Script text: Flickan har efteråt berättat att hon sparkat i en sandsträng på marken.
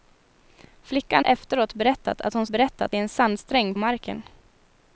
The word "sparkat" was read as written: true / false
false